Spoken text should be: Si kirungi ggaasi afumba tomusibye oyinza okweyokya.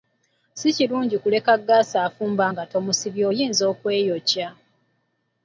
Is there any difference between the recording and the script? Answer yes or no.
yes